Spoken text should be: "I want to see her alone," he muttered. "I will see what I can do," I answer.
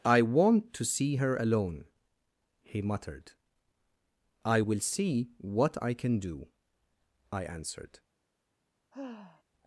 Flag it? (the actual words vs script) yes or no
yes